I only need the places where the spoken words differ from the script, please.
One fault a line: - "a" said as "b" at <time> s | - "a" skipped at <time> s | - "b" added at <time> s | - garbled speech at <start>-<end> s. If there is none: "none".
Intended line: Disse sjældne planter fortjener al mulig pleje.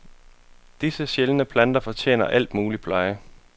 none